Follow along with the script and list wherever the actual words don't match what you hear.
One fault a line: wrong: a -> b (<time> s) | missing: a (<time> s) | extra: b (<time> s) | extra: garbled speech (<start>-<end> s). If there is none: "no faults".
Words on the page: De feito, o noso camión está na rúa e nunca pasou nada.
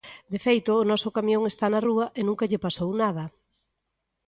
extra: lle (2.5 s)